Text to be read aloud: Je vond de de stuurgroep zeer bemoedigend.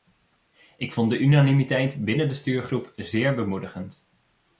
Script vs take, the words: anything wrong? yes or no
yes